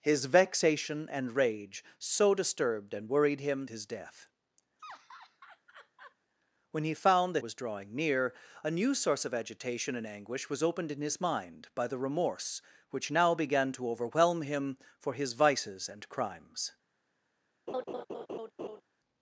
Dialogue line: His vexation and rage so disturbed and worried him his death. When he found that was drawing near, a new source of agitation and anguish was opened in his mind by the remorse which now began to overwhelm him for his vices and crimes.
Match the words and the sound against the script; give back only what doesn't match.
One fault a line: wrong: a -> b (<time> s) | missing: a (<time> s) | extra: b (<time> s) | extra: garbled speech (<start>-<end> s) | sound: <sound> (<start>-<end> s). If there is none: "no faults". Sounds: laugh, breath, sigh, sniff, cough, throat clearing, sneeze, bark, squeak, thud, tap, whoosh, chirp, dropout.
sound: laugh (4.8-6.2 s)
sound: laugh (17.7-18.8 s)